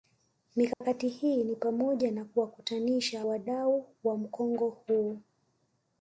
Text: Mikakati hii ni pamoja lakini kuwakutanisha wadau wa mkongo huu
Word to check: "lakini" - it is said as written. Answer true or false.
false